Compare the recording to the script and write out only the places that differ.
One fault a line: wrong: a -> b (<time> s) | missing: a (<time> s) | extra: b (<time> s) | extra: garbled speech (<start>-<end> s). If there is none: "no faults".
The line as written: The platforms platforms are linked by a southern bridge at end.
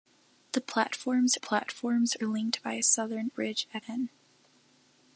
no faults